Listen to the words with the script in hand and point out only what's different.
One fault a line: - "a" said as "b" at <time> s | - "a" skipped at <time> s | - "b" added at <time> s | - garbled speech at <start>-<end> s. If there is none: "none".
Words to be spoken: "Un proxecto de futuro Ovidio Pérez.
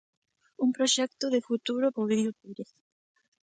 none